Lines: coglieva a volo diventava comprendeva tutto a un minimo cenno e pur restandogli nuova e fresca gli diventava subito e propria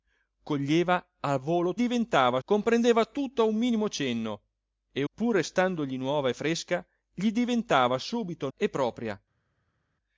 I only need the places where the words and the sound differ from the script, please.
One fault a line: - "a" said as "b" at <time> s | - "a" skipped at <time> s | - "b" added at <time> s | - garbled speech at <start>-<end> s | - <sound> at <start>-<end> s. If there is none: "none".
none